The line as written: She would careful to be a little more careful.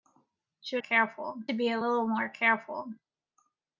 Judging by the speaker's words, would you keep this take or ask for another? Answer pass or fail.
pass